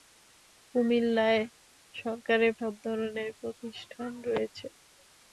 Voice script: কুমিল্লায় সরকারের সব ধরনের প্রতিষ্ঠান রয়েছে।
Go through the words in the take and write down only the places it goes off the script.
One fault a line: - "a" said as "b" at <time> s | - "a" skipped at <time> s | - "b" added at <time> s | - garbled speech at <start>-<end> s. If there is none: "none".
none